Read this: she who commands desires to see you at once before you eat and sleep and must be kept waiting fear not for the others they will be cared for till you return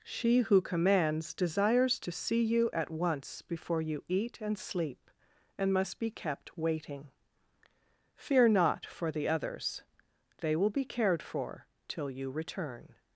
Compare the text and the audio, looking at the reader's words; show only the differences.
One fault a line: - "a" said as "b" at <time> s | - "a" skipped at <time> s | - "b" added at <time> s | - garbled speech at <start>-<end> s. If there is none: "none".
none